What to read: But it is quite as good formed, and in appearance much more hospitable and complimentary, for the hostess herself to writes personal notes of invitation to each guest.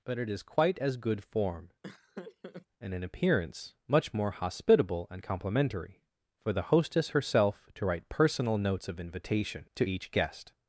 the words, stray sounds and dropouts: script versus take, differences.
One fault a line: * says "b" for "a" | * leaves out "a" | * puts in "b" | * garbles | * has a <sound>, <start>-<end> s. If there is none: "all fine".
* says "form" for "formed"
* has a laugh, 1.8-2.7 s
* says "write" for "writes"